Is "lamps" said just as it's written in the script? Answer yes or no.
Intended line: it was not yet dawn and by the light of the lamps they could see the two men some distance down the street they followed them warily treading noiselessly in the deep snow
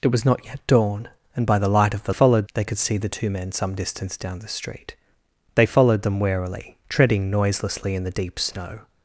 no